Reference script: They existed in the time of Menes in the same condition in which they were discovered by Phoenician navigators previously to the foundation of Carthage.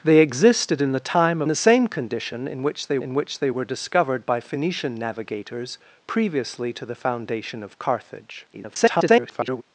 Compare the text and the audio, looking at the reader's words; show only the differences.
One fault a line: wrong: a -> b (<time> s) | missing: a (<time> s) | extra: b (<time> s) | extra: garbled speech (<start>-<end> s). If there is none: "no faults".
wrong: of Menes -> the same condition (1.5 s)
wrong: the same condition -> which they (2.6 s)
extra: garbled speech (8.5-9.6 s)